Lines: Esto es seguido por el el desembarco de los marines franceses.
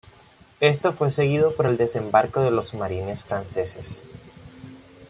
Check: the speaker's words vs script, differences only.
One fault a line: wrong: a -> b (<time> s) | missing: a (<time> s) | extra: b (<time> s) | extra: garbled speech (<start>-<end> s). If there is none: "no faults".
wrong: es -> fue (0.9 s)
missing: el (1.8 s)